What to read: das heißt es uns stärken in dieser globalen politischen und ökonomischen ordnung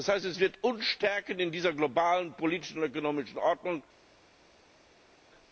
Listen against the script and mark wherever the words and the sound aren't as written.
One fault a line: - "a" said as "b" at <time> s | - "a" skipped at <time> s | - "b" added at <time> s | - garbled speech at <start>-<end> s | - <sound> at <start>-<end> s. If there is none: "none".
- "wird" added at 0.4 s